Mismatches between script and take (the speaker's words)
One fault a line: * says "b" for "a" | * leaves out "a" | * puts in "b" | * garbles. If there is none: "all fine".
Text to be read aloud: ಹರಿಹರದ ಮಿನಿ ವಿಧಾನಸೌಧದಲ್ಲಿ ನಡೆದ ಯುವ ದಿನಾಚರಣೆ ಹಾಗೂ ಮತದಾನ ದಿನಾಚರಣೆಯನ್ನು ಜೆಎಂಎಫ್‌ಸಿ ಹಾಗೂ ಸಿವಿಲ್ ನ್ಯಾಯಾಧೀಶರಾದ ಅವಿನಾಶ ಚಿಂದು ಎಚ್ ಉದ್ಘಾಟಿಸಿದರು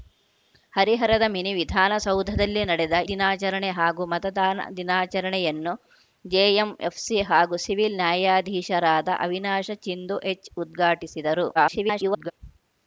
* leaves out "ಯುವ"
* garbles